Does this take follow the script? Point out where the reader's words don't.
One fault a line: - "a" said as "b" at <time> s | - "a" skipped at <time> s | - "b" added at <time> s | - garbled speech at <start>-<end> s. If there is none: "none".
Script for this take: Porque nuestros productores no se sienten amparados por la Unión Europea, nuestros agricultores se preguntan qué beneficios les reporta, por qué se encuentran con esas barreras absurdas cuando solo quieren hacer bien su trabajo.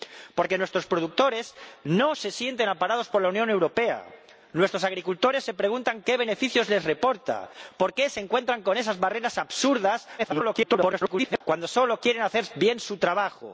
- garbled speech at 10.2-11.4 s